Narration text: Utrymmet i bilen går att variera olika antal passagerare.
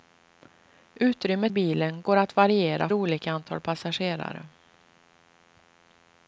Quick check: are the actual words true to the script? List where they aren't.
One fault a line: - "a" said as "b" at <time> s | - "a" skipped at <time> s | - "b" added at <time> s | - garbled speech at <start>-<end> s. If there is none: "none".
none